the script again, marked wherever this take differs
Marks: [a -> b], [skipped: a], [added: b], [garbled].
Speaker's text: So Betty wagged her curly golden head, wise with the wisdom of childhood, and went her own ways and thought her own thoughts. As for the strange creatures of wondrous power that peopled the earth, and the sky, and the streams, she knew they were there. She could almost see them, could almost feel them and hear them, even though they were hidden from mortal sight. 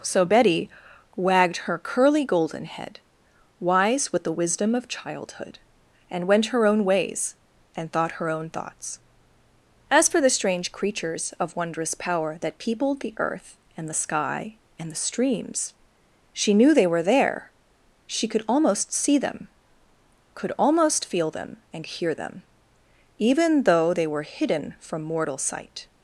So Betty wagged her curly golden head, wise with the wisdom of childhood, and went her own ways and thought her own thoughts. As for the strange creatures of wondrous power that peopled the earth, and the sky, and the streams, she knew they were there. She could almost see them, could almost feel them and hear them, even though they were hidden from mortal sight.